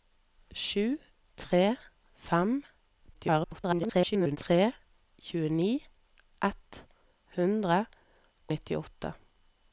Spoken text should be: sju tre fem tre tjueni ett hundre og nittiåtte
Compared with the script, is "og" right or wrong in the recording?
wrong